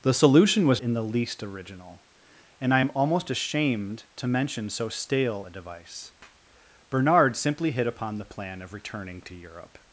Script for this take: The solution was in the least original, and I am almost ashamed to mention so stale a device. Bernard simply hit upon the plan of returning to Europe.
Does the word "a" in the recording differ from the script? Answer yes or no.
no